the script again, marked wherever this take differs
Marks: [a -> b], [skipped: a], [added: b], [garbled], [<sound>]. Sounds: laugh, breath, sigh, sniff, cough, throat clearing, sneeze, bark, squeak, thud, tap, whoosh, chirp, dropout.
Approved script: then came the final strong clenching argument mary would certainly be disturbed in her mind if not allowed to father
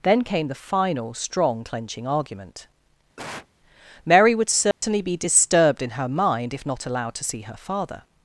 then came the final strong clenching argument [cough] mary would certainly [dropout] be disturbed in her mind if not allowed to [added: see her] father